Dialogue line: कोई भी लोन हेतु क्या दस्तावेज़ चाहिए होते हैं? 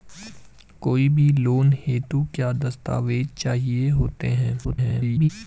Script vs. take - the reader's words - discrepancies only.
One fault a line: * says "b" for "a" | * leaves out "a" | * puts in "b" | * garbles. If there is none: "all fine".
* garbles